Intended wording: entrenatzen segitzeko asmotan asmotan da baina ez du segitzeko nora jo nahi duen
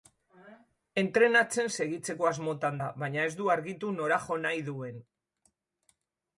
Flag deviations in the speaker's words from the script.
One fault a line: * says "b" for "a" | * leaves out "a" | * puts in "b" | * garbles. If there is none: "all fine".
* leaves out "asmotan"
* says "argitu" for "segitzeko"